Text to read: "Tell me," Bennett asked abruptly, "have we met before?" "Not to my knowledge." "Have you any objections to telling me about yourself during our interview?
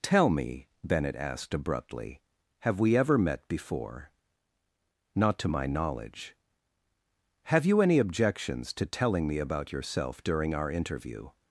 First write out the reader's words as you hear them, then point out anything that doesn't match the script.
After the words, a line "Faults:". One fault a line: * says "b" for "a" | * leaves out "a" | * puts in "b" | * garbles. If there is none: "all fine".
"Tell me," Bennett asked abruptly, "have we ever met before?" "Not to my knowledge." "Have you any objections to telling me about yourself during our interview?
Faults:
* puts in "ever"